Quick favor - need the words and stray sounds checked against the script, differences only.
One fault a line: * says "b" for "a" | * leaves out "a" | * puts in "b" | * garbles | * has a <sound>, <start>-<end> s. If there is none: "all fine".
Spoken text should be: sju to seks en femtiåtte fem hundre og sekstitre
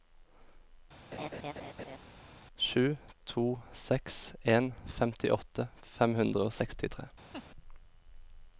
* has a laugh, 1.1-2.0 s
* has a laugh, 7.3-7.4 s